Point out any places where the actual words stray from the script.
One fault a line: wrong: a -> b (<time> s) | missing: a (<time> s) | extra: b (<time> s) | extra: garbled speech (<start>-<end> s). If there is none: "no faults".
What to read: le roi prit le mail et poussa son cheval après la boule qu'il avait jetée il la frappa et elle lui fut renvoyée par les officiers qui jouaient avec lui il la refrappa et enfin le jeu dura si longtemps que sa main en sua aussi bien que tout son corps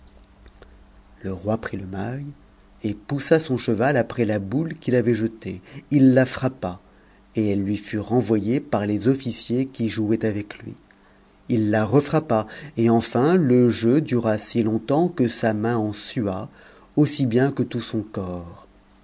no faults